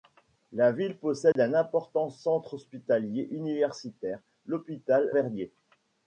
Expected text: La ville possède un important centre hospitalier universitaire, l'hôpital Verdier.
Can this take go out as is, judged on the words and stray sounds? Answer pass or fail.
fail